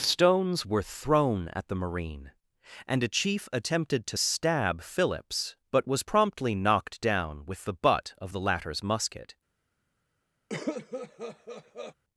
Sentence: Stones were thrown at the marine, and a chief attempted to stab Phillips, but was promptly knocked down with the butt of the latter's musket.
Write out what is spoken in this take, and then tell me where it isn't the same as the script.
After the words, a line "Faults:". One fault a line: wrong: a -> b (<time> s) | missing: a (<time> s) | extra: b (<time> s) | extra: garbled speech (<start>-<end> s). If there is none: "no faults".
Stones were thrown at the marine, and a chief attempted to stab Phillips, but was promptly knocked down with the butt of the latter's musket.
Faults:
no faults